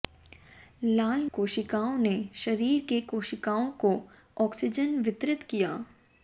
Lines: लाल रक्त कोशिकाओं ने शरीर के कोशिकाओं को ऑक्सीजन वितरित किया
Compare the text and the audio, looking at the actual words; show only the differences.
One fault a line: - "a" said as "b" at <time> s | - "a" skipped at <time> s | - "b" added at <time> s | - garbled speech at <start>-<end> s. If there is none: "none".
- "रक्त" skipped at 1.3 s